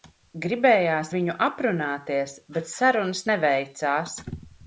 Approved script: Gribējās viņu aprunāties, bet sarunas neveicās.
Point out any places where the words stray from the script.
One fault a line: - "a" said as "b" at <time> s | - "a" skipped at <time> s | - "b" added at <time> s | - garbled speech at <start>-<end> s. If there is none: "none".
none